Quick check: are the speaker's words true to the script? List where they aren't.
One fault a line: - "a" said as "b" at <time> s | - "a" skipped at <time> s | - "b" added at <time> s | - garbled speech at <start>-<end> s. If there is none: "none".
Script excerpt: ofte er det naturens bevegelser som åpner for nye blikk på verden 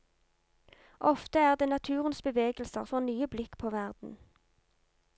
- "som åpner" skipped at 2.8 s